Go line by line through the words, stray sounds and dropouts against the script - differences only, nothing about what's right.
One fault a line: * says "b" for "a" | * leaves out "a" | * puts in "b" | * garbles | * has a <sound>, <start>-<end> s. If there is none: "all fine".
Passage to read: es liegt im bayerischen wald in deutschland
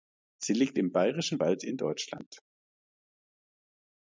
* says "sie" for "es"